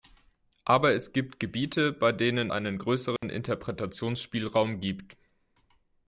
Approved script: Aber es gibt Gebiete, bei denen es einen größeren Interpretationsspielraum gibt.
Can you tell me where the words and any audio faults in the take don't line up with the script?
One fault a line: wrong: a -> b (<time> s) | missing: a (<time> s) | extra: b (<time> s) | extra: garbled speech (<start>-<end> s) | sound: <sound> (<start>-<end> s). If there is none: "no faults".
missing: es (2.5 s)
sound: dropout (3.2-3.2 s)